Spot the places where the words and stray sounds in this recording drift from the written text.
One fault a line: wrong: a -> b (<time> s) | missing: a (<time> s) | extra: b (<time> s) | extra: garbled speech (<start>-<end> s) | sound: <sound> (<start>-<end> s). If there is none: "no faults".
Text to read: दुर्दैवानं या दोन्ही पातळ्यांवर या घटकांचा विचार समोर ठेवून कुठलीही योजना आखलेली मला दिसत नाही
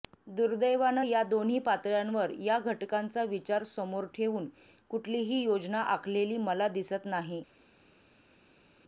no faults